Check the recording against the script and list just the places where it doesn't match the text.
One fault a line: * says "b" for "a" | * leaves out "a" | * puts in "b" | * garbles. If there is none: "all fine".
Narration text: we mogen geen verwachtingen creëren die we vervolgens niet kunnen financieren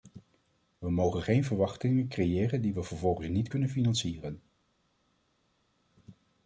all fine